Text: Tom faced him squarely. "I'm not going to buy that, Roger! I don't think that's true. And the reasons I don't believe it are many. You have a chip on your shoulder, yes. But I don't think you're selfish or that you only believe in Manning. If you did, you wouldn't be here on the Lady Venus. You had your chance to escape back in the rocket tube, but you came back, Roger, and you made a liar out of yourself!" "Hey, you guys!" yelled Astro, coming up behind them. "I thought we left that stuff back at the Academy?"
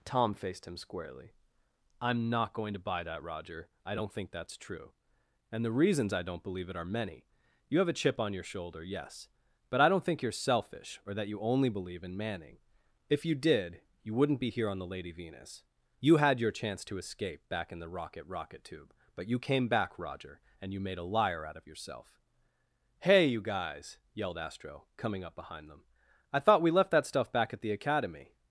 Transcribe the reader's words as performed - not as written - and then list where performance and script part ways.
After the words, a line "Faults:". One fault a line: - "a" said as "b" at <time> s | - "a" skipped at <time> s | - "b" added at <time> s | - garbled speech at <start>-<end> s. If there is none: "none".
Tom faced him squarely. "I'm not going to buy that, Roger! I don't think that's true. And the reasons I don't believe it are many. You have a chip on your shoulder, yes. But I don't think you're selfish or that you only believe in Manning. If you did, you wouldn't be here on the Lady Venus. You had your chance to escape back in the rocket rocket tube, but you came back, Roger, and you made a liar out of yourself!" "Hey, you guys!" yelled Astro, coming up behind them. "I thought we left that stuff back at the Academy?"
Faults:
- "rocket" added at 18.2 s